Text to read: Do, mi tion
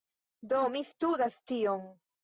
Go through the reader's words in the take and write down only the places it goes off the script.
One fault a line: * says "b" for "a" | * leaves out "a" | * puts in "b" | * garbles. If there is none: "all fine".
* puts in "studas"